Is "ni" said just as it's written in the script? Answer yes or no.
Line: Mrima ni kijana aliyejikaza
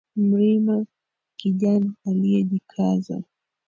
no